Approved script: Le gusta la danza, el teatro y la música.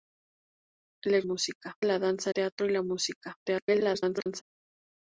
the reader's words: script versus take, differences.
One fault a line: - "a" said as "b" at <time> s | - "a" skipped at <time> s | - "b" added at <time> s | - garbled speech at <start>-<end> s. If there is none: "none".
- "gusta" said as "música" at 1.2 s
- "el" skipped at 2.3 s
- garbled speech at 3.4-4.4 s